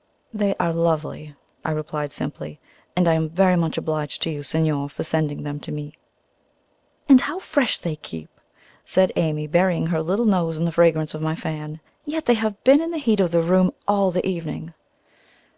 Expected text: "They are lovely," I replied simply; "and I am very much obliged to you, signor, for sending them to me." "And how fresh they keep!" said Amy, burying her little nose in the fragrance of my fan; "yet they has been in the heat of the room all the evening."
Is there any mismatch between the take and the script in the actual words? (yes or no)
yes